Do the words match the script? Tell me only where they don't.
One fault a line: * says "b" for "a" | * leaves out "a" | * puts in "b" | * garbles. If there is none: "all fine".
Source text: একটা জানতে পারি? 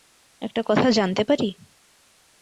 * puts in "কথা"